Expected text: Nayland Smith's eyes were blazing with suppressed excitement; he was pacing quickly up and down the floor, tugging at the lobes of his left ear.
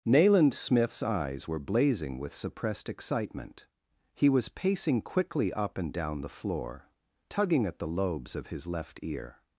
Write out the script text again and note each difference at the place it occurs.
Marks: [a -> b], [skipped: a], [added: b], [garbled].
Nayland Smith's eyes were blazing with suppressed excitement; he was pacing quickly up and down the floor, tugging at the lobes of his left ear.